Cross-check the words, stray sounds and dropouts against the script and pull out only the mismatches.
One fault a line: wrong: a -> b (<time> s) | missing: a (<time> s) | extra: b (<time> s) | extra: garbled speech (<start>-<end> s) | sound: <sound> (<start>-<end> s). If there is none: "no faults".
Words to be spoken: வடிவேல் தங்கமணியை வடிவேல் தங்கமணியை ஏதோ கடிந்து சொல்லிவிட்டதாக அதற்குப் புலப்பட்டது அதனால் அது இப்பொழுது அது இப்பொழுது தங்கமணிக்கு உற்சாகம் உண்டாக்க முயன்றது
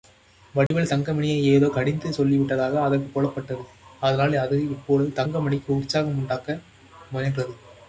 sound: dropout (0.7-0.7 s)
missing: வடிவேல் தங்கமணியை (1.4 s)
missing: அது இப்பொழுது (5.2 s)